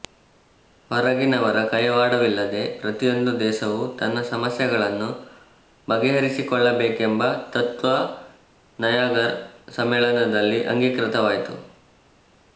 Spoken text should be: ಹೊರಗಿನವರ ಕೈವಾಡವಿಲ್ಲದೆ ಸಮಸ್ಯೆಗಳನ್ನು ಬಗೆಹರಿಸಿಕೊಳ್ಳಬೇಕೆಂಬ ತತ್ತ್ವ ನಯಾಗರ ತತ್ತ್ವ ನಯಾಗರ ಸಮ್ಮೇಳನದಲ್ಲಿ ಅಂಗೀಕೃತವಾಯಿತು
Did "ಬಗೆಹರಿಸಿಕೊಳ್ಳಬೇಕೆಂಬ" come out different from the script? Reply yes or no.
no